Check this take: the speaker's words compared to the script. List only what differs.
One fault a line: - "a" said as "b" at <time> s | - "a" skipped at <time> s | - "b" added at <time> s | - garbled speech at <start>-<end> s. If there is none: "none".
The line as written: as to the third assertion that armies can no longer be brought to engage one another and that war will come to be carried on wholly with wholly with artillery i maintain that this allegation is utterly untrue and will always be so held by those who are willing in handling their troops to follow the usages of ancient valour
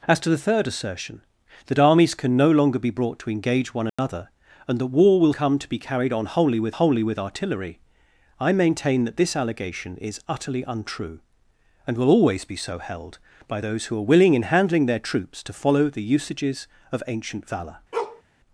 none